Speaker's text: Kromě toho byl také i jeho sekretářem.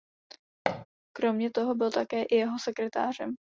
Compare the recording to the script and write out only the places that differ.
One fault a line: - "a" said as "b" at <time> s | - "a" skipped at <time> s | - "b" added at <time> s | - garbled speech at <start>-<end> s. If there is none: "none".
none